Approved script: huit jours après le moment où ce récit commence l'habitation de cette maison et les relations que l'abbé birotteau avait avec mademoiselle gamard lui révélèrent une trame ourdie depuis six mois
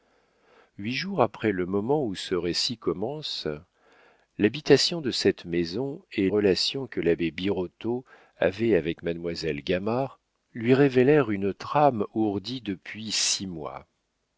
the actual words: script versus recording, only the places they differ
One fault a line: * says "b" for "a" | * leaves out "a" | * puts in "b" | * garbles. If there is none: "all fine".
* leaves out "les"